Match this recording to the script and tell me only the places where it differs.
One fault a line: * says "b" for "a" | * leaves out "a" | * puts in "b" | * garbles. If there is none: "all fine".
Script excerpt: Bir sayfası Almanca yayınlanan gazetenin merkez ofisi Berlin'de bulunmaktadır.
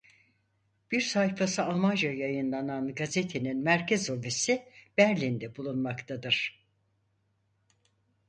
all fine